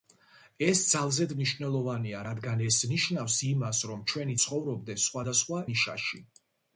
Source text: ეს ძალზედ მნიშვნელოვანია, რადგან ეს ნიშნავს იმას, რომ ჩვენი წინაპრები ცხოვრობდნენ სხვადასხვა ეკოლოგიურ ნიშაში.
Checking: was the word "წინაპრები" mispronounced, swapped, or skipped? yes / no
yes